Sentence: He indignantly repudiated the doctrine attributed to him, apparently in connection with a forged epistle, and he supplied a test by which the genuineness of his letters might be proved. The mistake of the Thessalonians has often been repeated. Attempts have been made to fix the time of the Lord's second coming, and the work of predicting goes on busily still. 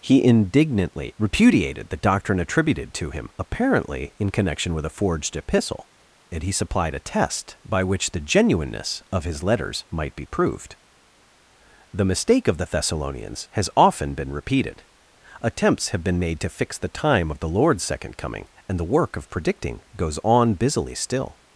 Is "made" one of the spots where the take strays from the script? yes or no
no